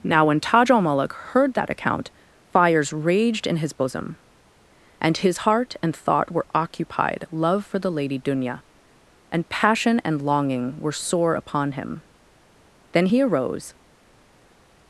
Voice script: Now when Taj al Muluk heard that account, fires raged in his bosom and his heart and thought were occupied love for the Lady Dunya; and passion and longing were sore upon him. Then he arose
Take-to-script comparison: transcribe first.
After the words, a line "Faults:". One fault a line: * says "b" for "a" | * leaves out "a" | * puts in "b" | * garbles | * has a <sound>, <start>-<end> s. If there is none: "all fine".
Now when Taj al Muluk heard that account, fires raged in his bosom and his heart and thought were occupied love for the Lady Dunya; and passion and longing were sore upon him. Then he arose
Faults:
all fine